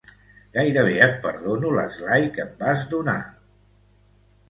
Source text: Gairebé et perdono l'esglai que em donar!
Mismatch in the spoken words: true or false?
true